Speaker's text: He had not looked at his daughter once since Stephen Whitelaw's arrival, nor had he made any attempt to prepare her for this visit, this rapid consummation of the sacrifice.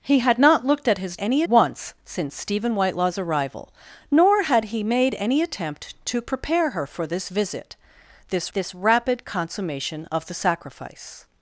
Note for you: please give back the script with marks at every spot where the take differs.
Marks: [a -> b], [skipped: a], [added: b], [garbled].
He had not looked at his [daughter -> any] once since Stephen Whitelaw's arrival, nor had he made any attempt to prepare her for this visit, this [added: this] rapid consummation of the sacrifice.